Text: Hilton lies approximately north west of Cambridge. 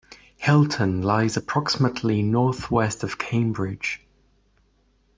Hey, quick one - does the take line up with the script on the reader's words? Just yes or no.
yes